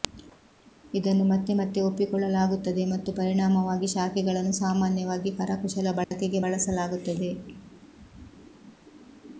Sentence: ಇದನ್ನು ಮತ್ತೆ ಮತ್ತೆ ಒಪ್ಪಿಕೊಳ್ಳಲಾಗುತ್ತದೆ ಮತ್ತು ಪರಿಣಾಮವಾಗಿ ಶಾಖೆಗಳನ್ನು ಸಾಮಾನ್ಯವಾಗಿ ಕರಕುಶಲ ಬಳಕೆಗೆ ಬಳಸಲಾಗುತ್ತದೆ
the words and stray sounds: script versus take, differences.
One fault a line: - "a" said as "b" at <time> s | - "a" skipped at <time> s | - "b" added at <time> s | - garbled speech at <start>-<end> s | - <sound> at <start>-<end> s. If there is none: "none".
- dropout at 6.0-6.1 s